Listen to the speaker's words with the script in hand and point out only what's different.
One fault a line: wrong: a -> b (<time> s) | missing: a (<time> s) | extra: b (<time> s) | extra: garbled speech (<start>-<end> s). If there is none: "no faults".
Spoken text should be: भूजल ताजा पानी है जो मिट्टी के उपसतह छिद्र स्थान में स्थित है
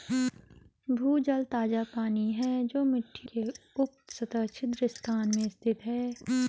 no faults